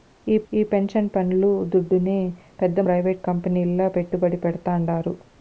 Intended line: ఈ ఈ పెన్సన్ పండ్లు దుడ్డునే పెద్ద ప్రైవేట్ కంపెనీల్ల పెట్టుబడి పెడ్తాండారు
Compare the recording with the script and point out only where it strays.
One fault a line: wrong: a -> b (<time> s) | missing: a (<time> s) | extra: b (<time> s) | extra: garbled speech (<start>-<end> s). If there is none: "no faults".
no faults